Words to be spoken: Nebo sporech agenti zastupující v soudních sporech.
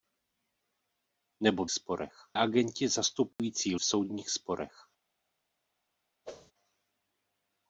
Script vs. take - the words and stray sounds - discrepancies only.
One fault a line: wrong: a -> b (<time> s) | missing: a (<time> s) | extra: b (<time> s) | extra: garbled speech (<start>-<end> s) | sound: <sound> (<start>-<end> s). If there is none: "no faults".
sound: dropout (3.3-3.4 s)
sound: whoosh (6.2-6.5 s)